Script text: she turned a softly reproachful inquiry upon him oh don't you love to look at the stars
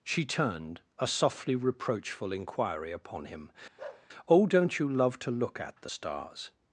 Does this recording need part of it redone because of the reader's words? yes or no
no